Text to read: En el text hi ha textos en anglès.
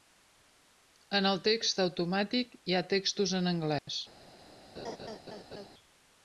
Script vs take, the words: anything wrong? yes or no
yes